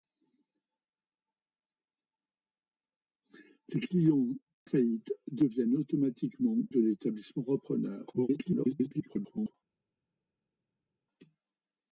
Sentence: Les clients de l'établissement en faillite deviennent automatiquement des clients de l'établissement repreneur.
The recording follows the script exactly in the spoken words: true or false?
false